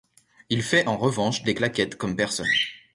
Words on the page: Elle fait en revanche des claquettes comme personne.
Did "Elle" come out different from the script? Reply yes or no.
yes